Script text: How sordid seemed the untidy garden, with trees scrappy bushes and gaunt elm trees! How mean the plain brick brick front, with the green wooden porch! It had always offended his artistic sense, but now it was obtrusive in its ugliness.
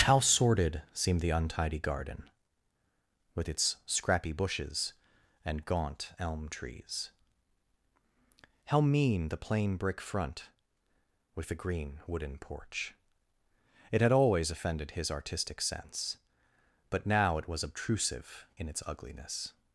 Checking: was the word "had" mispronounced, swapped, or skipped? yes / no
no